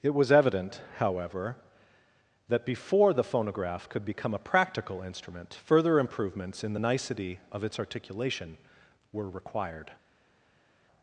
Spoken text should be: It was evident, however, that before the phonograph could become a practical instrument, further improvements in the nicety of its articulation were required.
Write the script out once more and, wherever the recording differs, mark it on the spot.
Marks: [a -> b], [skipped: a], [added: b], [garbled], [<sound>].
It was evident, however, that before the phonograph could become a practical instrument, further improvements in the nicety of its articulation were required.